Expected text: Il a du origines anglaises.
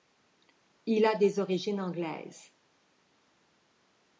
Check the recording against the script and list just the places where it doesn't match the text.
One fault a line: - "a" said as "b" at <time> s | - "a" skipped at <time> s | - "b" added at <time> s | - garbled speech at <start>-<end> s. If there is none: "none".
- "du" said as "des" at 1.1 s